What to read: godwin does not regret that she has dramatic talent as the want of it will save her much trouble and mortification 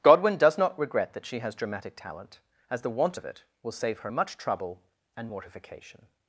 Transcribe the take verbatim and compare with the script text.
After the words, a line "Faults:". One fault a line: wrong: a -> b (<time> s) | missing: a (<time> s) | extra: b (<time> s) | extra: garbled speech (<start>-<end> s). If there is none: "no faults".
godwin does not regret that she has dramatic talent as the want of it will save her much trouble and mortification
Faults:
no faults